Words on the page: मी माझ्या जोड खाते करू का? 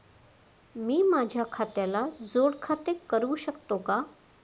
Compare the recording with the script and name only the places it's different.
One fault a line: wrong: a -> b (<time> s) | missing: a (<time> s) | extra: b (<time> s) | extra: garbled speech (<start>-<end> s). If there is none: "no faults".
extra: खात्याला (1.5 s)
extra: शकतो (3.4 s)